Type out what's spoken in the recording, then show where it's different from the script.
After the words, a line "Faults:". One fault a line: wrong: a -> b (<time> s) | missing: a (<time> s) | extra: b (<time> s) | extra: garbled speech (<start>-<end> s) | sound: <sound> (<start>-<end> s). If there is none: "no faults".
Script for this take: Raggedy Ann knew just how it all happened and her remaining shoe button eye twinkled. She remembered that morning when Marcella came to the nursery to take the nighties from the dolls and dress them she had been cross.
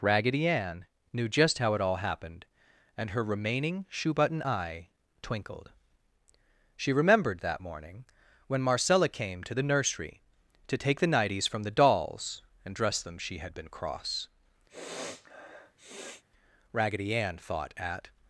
Raggedy Ann knew just how it all happened and her remaining shoe button eye twinkled. She remembered that morning when Marcella came to the nursery to take the nighties from the dolls and dress them she had been cross. Raggedy Ann thought at
Faults:
sound: sniff (14.7-16.2 s)
extra: Raggedy Ann thought at (16.7 s)